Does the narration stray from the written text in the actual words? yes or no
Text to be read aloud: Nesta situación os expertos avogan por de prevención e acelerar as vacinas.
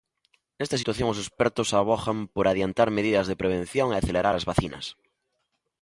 yes